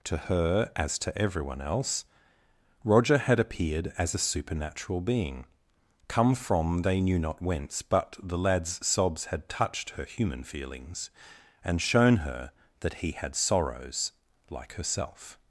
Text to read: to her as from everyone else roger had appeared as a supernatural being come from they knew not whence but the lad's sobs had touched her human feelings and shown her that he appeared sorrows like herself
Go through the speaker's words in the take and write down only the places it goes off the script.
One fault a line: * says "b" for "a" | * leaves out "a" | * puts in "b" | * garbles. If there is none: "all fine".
* says "to" for "from"
* says "had" for "appeared"